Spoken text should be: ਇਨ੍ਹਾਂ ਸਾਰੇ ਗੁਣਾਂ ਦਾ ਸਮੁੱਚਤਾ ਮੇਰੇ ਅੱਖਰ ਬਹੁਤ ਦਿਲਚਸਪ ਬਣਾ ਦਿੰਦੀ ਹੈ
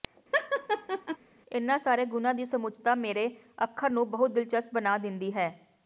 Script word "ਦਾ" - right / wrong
wrong